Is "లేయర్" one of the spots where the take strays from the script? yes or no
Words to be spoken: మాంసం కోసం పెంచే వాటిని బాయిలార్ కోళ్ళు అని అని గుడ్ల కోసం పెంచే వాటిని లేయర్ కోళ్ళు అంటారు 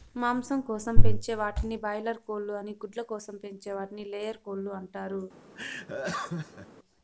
no